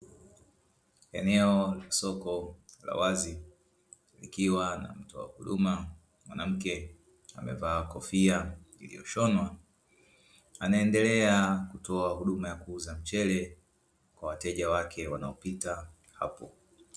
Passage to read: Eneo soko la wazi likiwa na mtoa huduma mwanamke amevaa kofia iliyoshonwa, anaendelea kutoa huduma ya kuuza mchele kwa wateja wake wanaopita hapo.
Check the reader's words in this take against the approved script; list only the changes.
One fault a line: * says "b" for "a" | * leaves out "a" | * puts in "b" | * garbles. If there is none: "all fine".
all fine